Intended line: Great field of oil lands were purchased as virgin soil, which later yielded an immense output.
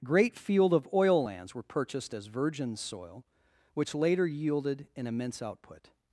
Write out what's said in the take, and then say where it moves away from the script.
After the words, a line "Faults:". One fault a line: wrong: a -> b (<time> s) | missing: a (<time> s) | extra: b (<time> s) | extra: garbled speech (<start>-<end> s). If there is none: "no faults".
Great field of oil lands were purchased as virgin soil, which later yielded an immense output.
Faults:
no faults